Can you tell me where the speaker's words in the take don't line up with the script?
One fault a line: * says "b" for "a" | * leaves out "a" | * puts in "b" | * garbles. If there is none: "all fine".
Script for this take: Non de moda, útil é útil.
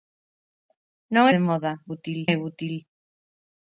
all fine